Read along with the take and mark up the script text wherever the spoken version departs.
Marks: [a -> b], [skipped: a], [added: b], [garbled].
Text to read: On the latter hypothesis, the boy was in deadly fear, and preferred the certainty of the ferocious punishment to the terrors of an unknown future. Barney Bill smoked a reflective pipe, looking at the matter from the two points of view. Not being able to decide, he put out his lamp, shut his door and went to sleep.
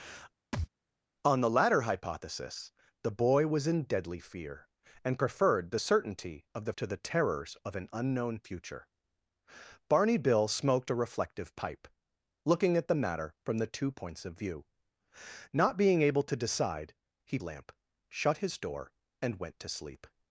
On the latter hypothesis, the boy was in deadly fear, and preferred the certainty of the [skipped: ferocious punishment] to the terrors of an unknown future. Barney Bill smoked a reflective pipe, looking at the matter from the two points of view. Not being able to decide, he [skipped: put out his] lamp, shut his door and went to sleep.